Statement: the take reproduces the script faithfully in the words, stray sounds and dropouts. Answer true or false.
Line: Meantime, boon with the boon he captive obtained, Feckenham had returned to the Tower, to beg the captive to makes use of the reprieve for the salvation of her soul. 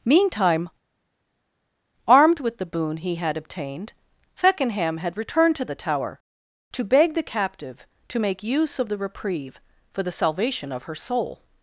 false